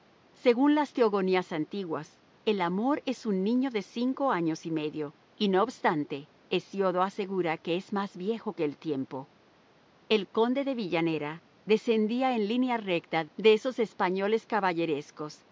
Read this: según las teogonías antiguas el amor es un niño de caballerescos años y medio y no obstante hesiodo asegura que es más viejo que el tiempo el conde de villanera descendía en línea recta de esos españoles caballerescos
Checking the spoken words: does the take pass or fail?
fail